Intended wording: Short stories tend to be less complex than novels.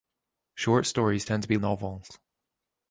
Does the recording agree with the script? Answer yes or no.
no